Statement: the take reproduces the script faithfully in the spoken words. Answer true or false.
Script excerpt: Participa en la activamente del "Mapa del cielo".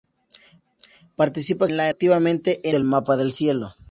true